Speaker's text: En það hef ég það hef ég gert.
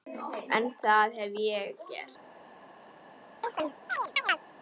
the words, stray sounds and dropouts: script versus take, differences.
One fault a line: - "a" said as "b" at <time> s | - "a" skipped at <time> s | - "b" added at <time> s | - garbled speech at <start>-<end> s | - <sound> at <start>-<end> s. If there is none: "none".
- "það hef ég" skipped at 1.8 s
- chirp at 3.4-4.4 s